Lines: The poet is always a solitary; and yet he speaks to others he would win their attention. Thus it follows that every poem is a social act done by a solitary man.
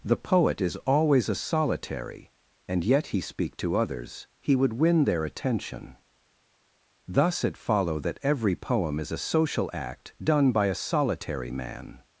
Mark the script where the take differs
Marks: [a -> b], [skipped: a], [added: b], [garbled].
The poet is always a solitary; and yet he [speaks -> speak] to others he would win their attention. Thus it [follows -> follow] that every poem is a social act done by a solitary man.